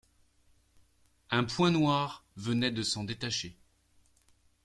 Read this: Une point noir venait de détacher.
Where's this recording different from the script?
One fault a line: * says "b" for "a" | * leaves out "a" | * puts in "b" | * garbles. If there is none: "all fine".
* says "Un" for "Une"
* puts in "s'en"